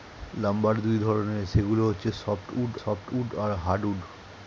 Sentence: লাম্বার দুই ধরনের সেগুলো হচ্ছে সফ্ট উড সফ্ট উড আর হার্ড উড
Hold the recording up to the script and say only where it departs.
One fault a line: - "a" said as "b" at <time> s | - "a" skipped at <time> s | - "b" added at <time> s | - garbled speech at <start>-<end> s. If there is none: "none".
none